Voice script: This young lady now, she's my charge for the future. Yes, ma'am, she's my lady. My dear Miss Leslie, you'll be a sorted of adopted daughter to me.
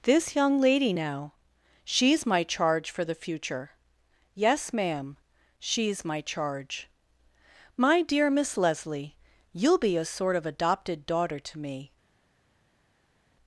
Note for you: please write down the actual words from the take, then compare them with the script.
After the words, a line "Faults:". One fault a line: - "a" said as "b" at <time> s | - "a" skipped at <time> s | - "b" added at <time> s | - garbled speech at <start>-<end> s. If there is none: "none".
This young lady now, she's my charge for the future. Yes, ma'am, she's my charge. My dear Miss Leslie, you'll be a sort of adopted daughter to me.
Faults:
- "lady" said as "charge" at 6.2 s
- "sorted" said as "sort" at 10.0 s